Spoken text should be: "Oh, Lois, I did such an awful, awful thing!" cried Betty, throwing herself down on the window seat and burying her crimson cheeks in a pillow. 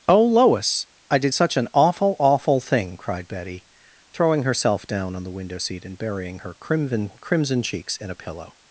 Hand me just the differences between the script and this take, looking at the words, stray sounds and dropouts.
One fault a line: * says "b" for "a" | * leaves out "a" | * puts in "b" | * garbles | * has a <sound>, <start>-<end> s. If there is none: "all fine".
* puts in "crimson"